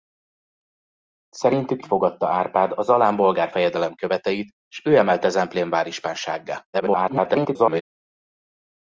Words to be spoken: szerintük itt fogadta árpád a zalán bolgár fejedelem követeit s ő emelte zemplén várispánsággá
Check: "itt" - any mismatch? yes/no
yes